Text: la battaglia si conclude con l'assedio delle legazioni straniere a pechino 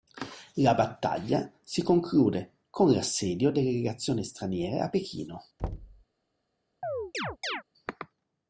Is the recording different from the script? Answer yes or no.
no